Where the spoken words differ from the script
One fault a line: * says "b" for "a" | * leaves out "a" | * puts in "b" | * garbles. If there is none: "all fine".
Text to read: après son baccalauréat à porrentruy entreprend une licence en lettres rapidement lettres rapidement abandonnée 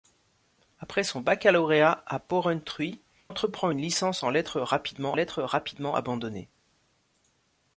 all fine